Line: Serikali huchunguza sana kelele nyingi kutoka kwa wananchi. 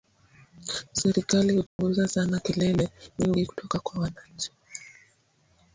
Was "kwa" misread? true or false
false